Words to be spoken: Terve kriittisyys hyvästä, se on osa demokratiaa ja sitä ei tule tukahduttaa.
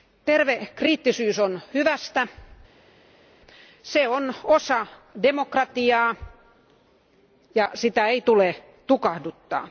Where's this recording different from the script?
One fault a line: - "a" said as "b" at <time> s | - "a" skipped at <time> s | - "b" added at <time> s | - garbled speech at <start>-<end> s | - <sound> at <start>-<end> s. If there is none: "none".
- "on" added at 1.4 s